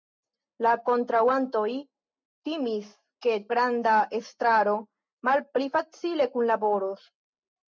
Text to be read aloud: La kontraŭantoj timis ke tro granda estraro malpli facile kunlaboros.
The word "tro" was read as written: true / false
false